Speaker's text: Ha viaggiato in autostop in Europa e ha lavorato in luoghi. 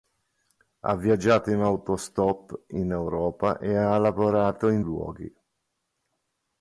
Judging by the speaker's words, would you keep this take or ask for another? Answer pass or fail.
pass